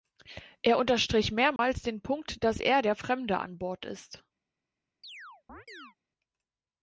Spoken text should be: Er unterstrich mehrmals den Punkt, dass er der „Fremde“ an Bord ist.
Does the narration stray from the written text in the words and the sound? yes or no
yes